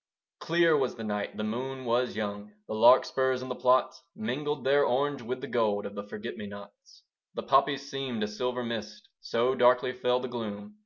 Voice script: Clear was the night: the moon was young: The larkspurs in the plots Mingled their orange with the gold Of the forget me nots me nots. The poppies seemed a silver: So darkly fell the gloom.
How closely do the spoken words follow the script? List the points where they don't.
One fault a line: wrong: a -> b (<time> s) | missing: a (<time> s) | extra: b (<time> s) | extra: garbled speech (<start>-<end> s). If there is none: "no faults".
missing: me nots (7.0 s)
extra: mist (8.6 s)